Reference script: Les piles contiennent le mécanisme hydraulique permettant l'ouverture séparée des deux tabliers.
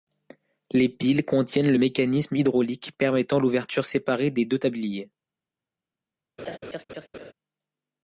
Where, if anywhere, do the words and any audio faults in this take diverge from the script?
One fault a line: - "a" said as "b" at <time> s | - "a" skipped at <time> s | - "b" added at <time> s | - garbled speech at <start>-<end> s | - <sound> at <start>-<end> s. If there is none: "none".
- laugh at 6.4-7.3 s